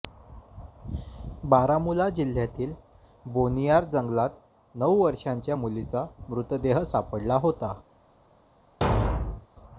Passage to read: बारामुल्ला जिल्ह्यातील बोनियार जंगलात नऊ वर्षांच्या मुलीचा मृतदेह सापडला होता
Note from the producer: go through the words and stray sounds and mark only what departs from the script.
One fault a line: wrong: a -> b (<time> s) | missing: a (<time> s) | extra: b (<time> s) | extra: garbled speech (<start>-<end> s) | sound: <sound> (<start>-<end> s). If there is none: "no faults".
sound: thud (8.8-9.5 s)